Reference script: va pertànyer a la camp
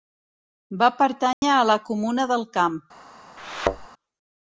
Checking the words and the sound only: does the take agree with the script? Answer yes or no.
no